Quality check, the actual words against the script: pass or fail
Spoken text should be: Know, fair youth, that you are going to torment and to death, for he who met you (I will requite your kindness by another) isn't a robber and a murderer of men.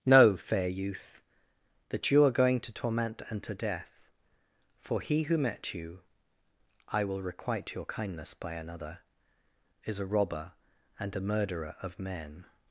fail